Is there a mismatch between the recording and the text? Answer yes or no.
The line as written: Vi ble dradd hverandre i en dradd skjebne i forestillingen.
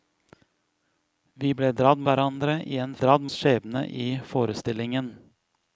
no